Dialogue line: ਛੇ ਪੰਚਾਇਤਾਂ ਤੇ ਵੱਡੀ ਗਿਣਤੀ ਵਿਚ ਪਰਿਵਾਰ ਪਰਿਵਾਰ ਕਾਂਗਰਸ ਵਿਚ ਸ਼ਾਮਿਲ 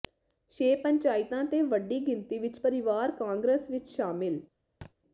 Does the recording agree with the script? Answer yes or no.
no